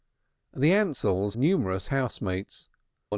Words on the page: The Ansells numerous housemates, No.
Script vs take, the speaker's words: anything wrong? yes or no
no